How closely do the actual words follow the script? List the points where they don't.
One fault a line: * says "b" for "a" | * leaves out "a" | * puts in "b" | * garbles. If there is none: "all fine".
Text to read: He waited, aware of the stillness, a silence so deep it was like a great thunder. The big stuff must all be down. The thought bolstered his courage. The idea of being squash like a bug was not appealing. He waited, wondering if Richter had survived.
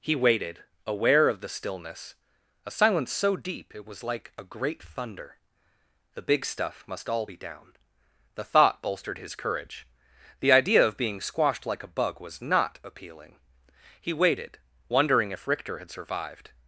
* says "squashed" for "squash"